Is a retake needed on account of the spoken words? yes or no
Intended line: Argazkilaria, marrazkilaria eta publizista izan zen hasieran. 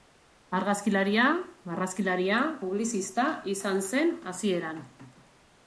yes